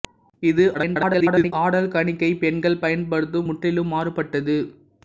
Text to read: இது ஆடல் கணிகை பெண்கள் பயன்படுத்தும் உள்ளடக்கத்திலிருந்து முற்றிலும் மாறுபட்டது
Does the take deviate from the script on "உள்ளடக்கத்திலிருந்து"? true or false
true